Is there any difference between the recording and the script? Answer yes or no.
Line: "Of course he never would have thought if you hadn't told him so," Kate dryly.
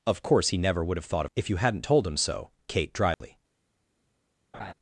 no